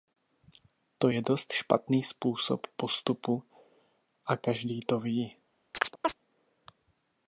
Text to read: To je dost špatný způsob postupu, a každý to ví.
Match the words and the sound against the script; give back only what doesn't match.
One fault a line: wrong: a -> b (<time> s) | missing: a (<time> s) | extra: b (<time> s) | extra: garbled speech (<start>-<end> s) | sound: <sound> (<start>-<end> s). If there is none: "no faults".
sound: chirp (5.7-6.2 s)